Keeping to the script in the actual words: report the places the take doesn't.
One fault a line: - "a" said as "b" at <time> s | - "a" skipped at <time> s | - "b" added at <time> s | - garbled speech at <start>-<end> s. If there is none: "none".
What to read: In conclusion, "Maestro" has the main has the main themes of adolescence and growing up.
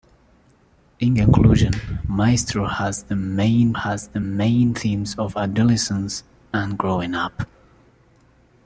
none